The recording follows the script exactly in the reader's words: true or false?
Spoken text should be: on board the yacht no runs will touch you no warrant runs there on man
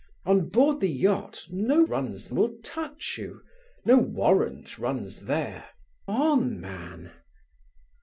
true